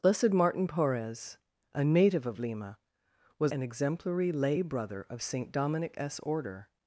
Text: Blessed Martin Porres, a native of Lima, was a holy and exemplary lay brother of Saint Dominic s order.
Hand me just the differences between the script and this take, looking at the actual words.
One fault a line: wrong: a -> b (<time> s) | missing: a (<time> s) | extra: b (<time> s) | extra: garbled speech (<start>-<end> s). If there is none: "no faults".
missing: a holy (3.5 s)